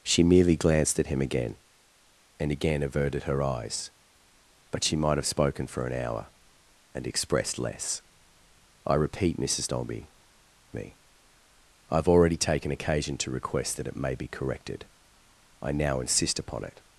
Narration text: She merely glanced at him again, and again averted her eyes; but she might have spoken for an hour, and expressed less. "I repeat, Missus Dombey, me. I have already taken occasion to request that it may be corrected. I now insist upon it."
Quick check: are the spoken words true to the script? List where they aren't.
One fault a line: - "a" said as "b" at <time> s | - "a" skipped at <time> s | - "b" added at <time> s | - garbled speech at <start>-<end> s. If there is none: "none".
none